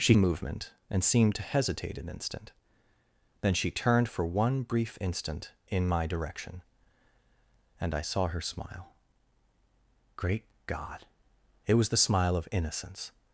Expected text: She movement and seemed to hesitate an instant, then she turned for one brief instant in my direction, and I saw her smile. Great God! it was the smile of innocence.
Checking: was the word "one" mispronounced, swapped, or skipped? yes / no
no